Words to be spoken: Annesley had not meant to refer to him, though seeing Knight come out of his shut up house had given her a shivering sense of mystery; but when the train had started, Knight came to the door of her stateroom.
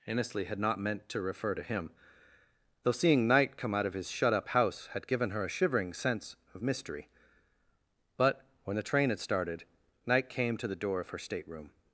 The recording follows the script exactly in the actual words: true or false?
true